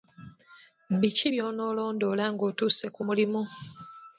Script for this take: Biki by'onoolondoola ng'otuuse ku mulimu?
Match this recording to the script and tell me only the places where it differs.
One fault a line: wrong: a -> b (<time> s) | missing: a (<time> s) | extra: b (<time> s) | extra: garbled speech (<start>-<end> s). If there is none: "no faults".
no faults